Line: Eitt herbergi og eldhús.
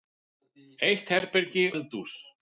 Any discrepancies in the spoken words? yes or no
yes